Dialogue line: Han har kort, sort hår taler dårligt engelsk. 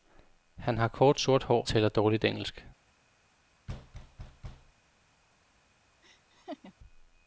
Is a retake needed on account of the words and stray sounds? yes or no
yes